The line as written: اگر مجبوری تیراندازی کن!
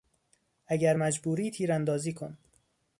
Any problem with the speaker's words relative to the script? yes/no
no